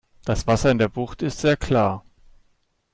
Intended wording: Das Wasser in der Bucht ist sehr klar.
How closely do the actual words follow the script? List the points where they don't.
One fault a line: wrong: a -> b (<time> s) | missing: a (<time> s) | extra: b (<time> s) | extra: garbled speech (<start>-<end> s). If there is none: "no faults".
no faults